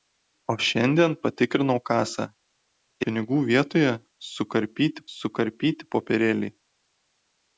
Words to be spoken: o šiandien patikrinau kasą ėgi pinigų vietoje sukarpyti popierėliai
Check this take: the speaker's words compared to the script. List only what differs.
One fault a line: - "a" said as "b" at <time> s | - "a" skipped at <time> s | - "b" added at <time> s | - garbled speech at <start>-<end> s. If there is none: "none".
- "ėgi" skipped at 2.2 s
- "sukarpyti" added at 5.2 s